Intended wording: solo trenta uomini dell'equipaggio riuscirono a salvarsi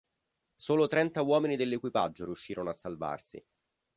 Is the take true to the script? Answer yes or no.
yes